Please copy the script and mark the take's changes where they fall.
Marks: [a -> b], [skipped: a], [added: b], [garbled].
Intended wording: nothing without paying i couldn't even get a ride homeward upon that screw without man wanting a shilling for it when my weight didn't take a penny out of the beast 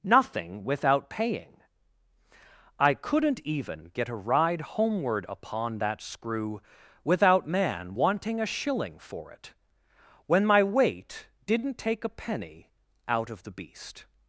nothing without paying i couldn't even get a ride homeward upon that screw without man wanting a shilling for it when my weight didn't take a penny out of the beast